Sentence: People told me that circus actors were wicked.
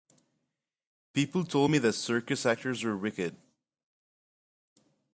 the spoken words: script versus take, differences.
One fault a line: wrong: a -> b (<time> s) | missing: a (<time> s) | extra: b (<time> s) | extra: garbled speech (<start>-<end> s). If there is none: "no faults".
no faults